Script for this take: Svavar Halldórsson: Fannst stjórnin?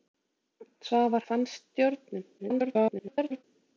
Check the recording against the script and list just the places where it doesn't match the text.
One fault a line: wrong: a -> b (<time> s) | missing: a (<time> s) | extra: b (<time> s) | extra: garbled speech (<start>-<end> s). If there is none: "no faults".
missing: Halldórsson (1.3 s)
extra: garbled speech (2.4-3.4 s)